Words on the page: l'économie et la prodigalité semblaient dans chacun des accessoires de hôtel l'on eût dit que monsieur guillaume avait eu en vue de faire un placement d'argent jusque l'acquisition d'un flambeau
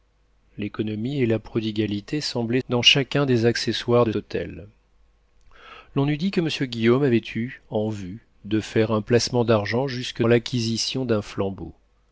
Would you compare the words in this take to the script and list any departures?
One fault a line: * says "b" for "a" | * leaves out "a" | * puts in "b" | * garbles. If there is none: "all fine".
all fine